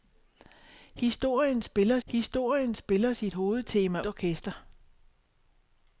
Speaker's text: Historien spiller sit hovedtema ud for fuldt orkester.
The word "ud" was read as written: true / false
false